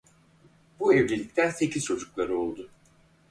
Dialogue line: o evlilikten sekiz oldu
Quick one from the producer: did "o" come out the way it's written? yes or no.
no